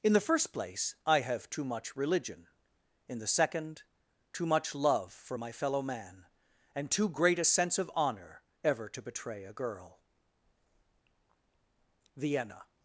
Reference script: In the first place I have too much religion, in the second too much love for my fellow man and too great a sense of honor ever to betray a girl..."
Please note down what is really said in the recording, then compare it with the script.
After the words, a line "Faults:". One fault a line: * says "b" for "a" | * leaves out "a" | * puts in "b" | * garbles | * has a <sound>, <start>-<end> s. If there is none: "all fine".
In the first place I have too much religion, in the second too much love for my fellow man and too great a sense of honor ever to betray a girl..." (Vienna
Faults:
* puts in "Vienna"